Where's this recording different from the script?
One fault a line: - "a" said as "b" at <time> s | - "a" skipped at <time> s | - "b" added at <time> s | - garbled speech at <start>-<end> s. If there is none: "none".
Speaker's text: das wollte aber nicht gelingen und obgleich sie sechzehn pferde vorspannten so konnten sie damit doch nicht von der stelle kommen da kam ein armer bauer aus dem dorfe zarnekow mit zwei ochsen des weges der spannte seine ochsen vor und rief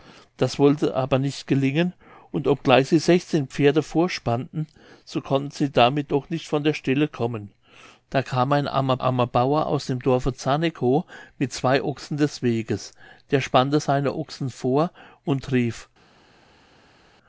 - "armer" added at 9.0 s